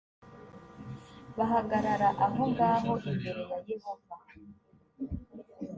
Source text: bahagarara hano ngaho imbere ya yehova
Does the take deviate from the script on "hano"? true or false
true